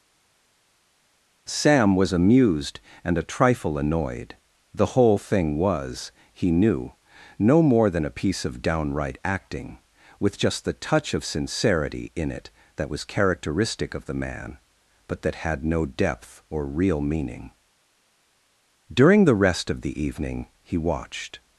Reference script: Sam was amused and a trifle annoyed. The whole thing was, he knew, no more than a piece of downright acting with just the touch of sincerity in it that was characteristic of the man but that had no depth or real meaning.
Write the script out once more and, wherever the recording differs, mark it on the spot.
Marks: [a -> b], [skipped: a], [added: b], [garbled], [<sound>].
Sam was amused and a trifle annoyed. The whole thing was, he knew, no more than a piece of downright acting with just the touch of sincerity in it that was characteristic of the man but that had no depth or real meaning. [added: During the rest of the evening he watched]